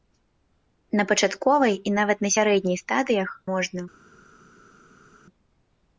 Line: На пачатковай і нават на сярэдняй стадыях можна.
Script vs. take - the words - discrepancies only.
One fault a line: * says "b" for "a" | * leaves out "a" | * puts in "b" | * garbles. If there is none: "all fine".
all fine